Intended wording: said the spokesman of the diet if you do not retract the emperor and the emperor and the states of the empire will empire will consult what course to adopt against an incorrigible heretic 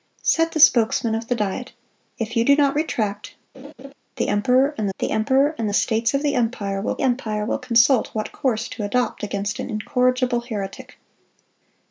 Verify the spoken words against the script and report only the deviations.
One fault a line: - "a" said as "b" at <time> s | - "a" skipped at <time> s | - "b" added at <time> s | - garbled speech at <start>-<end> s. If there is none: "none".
none